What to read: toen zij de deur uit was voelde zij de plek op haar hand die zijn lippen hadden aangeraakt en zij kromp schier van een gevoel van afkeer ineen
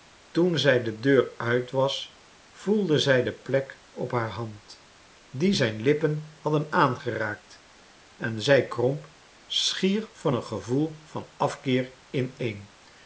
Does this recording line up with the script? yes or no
yes